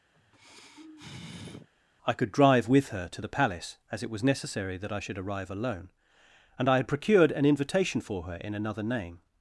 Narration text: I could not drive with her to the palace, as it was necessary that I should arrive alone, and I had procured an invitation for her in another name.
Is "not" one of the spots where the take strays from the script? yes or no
yes